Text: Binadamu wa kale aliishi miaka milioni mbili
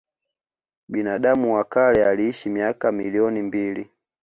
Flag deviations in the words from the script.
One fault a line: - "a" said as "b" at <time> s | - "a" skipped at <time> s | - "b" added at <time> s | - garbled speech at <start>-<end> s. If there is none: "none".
none